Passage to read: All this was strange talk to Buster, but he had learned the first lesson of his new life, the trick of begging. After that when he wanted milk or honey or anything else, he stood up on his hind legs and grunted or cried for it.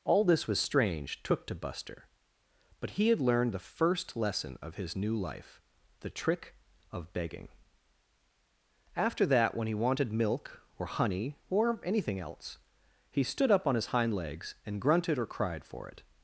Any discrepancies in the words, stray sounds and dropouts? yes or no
yes